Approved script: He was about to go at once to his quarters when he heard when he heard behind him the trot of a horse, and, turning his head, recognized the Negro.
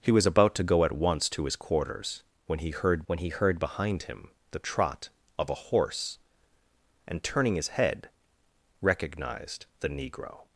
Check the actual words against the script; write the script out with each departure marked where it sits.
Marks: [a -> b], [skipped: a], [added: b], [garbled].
He was about to go at once to his quarters when he heard when he heard behind him the trot of a horse, and, turning his head, recognized the Negro.